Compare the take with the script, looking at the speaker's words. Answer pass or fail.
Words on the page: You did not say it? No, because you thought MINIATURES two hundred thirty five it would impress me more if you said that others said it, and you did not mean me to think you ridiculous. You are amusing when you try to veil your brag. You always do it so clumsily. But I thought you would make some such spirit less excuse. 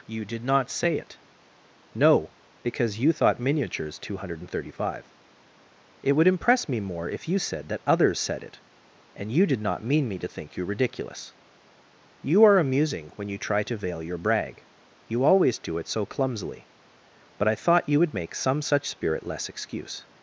pass